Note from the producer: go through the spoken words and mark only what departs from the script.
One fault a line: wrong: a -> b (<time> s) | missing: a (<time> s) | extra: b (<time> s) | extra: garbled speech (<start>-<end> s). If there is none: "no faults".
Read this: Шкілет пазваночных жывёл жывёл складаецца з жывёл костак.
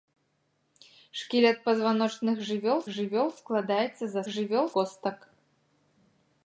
no faults